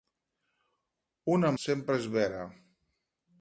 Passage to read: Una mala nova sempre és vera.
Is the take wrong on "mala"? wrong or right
wrong